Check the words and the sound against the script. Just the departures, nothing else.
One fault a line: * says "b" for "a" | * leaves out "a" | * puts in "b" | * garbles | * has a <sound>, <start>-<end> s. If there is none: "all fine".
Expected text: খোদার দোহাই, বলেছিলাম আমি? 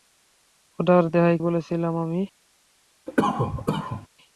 * has a cough, 3.1-4.1 s